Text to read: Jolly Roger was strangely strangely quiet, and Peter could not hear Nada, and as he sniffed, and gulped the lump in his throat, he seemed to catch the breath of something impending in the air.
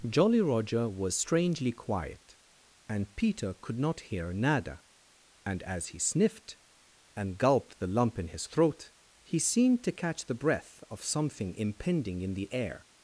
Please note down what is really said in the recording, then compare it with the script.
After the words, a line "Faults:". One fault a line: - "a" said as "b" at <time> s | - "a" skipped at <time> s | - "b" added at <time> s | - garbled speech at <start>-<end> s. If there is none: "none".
Jolly Roger was strangely quiet, and Peter could not hear Nada, and as he sniffed, and gulped the lump in his throat, he seemed to catch the breath of something impending in the air.
Faults:
- "strangely" skipped at 1.7 s